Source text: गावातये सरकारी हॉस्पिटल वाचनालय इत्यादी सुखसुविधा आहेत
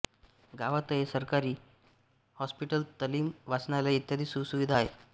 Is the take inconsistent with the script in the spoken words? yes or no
yes